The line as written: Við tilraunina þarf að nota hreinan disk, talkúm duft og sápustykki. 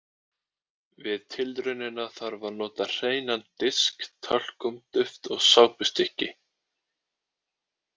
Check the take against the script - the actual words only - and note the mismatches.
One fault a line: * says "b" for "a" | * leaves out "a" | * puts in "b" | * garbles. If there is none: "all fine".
all fine